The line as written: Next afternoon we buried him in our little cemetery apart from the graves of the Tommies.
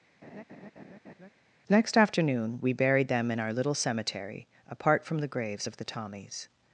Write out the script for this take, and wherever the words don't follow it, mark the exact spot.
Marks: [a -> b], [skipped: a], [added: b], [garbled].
Next afternoon we buried [him -> them] in our little cemetery apart from the graves of the Tommies.